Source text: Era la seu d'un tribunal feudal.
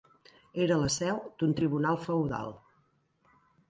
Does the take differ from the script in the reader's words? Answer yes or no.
no